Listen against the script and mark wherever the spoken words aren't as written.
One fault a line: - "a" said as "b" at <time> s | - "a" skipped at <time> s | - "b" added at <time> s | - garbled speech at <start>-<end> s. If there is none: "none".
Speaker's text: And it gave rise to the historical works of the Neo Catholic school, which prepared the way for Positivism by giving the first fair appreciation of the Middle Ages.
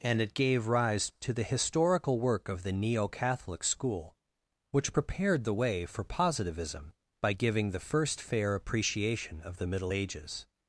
- "works" said as "work" at 2.2 s